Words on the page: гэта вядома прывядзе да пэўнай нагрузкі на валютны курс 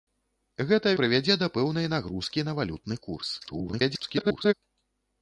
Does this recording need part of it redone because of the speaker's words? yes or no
yes